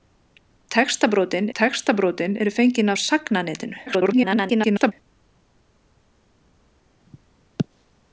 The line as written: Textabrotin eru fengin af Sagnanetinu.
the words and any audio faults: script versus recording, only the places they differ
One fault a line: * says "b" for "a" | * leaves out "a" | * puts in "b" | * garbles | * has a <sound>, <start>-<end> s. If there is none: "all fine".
* puts in "textabrotin"
* garbles